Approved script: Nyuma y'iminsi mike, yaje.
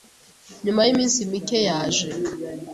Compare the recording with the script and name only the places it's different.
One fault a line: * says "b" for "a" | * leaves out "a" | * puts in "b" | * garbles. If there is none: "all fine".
all fine